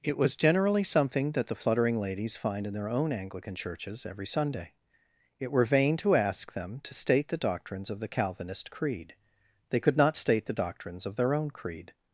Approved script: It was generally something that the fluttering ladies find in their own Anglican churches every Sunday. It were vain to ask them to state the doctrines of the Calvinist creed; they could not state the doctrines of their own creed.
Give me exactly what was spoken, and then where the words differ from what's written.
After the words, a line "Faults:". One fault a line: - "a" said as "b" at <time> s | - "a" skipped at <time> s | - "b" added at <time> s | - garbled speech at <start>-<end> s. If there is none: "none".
It was generally something that the fluttering ladies find in their own Anglican churches every Sunday. It were vain to ask them to state the doctrines of the Calvinist creed; they could not state the doctrines of their own creed.
Faults:
none